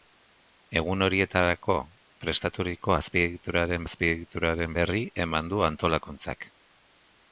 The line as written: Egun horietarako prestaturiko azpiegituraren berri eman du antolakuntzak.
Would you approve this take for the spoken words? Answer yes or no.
no